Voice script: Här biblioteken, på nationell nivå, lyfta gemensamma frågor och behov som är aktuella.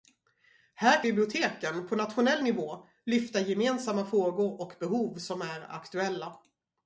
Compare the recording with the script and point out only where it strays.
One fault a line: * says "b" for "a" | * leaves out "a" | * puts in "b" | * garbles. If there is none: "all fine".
all fine